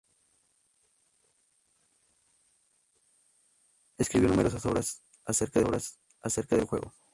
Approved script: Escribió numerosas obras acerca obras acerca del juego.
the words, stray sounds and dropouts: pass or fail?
pass